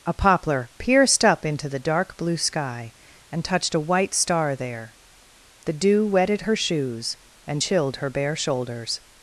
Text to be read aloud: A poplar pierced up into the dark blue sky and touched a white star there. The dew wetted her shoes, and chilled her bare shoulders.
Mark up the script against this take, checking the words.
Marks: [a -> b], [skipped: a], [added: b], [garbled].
A poplar pierced up into the dark blue sky and touched a white star there. The dew wetted her shoes, and chilled her bare shoulders.